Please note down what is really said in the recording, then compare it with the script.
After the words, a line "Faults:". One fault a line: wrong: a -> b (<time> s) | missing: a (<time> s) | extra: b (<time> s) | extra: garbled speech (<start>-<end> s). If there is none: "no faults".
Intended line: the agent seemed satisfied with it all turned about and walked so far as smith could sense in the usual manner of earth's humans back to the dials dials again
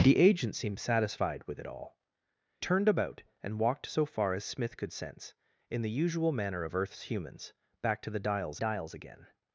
the agent seemed satisfied with it all turned about and walked so far as smith could sense in the usual manner of earth's humans back to the dials dials again
Faults:
no faults